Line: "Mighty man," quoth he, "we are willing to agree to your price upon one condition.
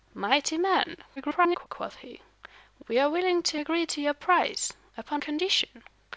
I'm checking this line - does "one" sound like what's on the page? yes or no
no